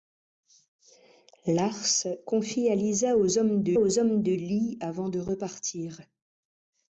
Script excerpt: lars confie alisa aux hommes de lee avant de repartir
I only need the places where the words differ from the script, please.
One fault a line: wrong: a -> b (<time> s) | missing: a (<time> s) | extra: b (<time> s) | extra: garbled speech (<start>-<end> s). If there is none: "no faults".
extra: aux hommes de (3.8 s)